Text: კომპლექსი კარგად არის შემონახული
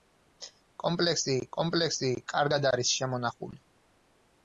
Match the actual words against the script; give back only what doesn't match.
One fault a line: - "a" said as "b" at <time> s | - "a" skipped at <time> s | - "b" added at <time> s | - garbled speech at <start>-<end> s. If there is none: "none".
- "კომპლექსი" added at 1.6 s